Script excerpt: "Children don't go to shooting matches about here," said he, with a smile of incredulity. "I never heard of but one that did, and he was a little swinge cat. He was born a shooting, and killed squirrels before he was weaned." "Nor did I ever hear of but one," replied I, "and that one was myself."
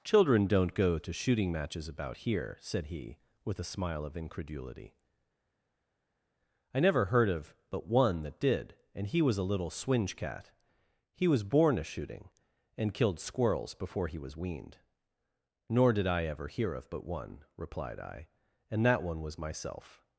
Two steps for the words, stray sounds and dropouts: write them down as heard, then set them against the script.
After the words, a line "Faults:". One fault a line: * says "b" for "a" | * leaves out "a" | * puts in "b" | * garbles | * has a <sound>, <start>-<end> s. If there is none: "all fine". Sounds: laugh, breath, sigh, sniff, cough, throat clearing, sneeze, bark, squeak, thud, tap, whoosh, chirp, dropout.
"Children don't go to shooting matches about here," said he, with a smile of incredulity. "I never heard of but one that did, and he was a little swinge cat. He was born a shooting, and killed squirrels before he was weaned." "Nor did I ever hear of but one," replied I, "and that one was myself."
Faults:
all fine